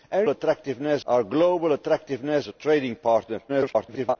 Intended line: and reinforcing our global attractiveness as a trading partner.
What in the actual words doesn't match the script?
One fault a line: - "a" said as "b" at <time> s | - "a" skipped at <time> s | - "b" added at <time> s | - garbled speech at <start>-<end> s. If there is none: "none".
- "reinforcing" said as "attractiveness" at 0.3 s
- "as" skipped at 2.5 s
- garbled speech at 3.5-4.2 s